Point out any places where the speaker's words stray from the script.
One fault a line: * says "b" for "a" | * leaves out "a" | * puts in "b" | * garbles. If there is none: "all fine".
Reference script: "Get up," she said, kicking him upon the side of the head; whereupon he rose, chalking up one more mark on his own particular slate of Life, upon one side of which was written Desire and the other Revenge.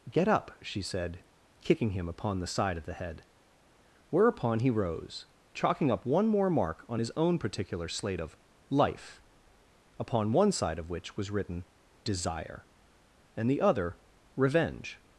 all fine